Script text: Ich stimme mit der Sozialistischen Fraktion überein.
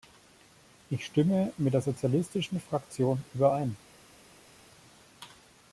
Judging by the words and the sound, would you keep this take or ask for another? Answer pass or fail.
pass